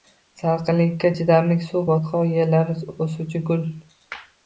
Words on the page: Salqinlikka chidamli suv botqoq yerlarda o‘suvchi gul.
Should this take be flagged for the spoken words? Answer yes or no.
no